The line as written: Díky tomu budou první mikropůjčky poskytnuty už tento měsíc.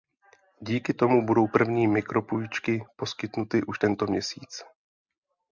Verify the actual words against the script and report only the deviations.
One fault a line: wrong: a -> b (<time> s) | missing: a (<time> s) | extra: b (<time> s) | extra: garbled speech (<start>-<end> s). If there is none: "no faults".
no faults